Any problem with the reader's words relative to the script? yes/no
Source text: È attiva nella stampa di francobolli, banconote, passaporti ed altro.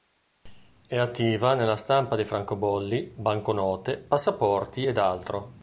no